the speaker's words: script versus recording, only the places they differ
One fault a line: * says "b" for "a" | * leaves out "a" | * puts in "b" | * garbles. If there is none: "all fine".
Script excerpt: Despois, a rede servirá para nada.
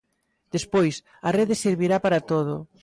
* says "todo" for "nada"